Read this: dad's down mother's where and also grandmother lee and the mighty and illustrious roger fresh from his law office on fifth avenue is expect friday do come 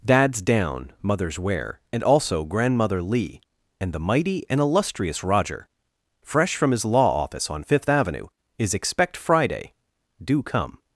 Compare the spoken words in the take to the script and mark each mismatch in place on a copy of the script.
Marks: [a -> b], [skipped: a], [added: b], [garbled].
dad's down mother's where and also grandmother lee and the mighty and illustrious roger fresh from his law office on fifth avenue is expect friday do come